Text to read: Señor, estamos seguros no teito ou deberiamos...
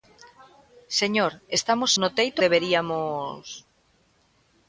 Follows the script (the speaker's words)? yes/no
no